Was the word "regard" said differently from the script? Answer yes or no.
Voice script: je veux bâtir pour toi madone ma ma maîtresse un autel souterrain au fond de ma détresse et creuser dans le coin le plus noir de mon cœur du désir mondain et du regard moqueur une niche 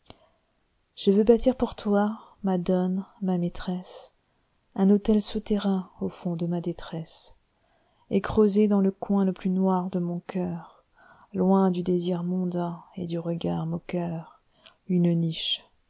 no